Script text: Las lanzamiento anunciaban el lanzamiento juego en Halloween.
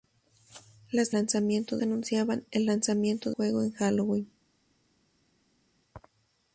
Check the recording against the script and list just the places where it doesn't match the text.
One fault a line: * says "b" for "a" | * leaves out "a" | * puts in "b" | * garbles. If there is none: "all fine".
all fine